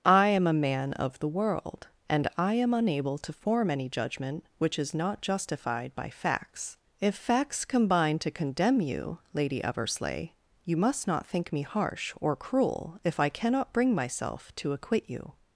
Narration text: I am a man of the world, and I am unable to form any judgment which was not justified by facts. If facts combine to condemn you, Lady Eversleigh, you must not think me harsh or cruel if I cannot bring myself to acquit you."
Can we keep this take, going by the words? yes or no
no